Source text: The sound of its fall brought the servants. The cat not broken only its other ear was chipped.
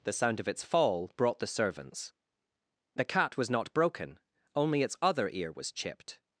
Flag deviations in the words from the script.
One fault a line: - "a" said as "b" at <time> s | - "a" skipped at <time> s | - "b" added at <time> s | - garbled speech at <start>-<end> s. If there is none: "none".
- "was" added at 3.4 s